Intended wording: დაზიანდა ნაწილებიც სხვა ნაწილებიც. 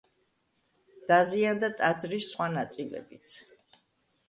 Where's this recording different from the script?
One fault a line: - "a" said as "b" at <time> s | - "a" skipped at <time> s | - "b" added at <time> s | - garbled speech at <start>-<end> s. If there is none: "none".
- "ნაწილებიც" said as "ტაძრის" at 1.8 s